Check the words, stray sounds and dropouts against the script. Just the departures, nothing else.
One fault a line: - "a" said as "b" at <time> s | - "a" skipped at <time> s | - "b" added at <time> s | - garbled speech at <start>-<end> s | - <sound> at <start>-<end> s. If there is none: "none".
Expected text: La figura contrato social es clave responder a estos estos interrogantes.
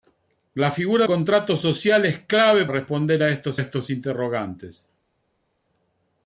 none